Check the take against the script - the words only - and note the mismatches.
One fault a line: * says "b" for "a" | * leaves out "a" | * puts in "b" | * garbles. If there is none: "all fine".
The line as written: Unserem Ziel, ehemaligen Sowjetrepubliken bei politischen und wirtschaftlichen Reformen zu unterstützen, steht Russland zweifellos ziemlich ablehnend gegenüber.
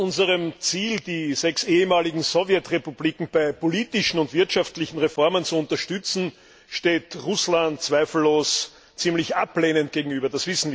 * puts in "die sechs"